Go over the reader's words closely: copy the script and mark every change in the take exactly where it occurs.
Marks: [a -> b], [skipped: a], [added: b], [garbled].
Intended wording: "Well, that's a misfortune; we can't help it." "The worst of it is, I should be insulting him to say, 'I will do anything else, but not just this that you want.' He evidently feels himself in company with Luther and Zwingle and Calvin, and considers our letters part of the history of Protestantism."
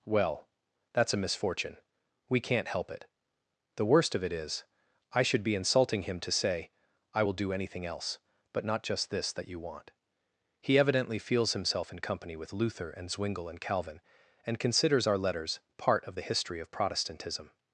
"Well, that's a misfortune; we can't help it." "The worst of it is, I should be insulting him to say, 'I will do anything else, but not just this that you want.' He evidently feels himself in company with Luther and Zwingle and Calvin, and considers our letters part of the history of Protestantism."